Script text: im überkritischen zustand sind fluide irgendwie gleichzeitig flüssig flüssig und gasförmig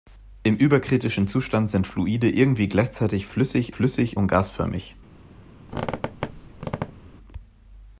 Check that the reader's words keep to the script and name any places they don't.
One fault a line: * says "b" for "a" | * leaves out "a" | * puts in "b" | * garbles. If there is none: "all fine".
all fine